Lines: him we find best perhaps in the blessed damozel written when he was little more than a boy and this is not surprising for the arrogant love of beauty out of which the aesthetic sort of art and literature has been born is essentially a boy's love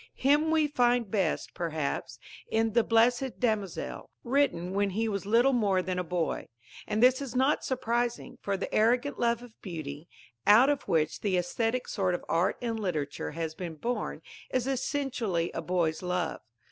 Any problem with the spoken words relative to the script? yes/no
no